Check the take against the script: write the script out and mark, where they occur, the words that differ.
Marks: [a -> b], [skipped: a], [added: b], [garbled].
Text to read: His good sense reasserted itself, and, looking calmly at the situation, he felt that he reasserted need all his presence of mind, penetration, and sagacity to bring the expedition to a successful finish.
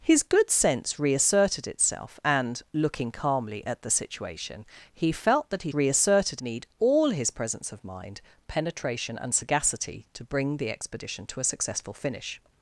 His good sense reasserted itself, and, looking calmly at the situation, he felt that he reasserted need all his presence of mind, penetration, and sagacity to bring the expedition to a successful finish.